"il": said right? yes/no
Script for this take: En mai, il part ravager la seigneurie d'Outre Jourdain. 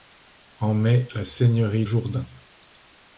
no